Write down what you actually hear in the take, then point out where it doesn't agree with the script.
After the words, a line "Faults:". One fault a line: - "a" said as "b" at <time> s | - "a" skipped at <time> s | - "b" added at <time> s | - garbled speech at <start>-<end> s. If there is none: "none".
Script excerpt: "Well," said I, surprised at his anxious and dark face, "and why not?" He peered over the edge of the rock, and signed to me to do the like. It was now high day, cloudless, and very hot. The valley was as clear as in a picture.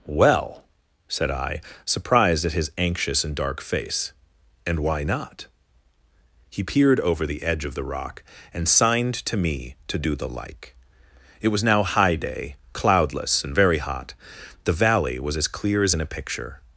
"Well," said I, surprised at his anxious and dark face, "and why not?" He peered over the edge of the rock, and signed to me to do the like. It was now high day, cloudless, and very hot. The valley was as clear as in a picture.
Faults:
none